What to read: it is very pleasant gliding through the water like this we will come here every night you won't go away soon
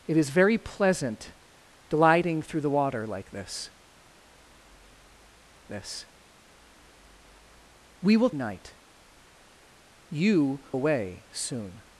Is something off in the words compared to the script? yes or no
yes